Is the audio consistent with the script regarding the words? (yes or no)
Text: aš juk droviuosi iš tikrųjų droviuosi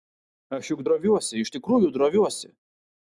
yes